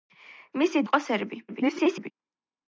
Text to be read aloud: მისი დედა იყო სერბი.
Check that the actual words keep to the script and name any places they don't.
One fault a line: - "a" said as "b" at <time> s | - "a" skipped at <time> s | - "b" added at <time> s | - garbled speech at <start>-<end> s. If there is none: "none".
- "დედა" skipped at 0.8 s
- garbled speech at 1.5-2.1 s